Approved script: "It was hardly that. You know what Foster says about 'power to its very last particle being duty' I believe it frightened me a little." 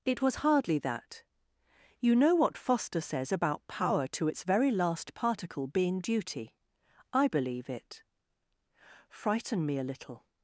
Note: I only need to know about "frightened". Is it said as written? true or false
false